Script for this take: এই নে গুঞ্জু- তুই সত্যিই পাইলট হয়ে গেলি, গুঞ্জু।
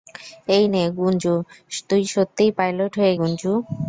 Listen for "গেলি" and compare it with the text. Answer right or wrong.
wrong